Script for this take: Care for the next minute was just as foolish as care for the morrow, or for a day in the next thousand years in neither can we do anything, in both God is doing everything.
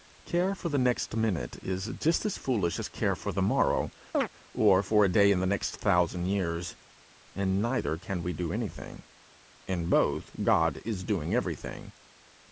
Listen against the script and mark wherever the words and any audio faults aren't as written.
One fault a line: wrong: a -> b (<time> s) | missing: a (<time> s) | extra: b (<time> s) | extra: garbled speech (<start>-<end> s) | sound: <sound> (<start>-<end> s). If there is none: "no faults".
wrong: was -> is (1.6 s)
sound: chirp (4.1-4.3 s)